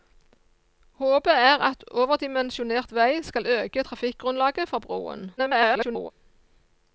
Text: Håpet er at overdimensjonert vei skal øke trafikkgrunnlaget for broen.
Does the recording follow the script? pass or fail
fail